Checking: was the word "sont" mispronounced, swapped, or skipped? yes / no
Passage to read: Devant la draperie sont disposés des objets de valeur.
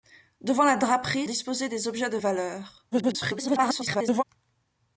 yes